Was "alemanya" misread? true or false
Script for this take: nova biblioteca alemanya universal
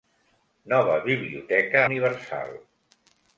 true